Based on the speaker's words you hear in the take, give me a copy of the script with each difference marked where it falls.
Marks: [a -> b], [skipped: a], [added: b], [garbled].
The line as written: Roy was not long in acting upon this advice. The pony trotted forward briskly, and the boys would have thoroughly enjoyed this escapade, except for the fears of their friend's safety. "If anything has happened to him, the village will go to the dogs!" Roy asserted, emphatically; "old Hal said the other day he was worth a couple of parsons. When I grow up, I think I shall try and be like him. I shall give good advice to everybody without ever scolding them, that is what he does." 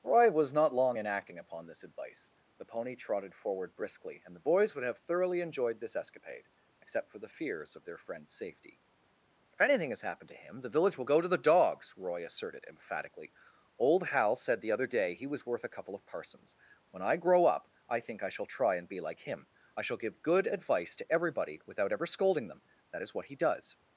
Roy was not long in acting upon this advice. The pony trotted forward briskly, and the boys would have thoroughly enjoyed this escapade, except for the fears of their friend's safety. "If anything has happened to him, the village will go to the dogs!" Roy asserted, emphatically; "old Hal said the other day he was worth a couple of parsons. When I grow up, I think I shall try and be like him. I shall give good advice to everybody without ever scolding them, that is what he does."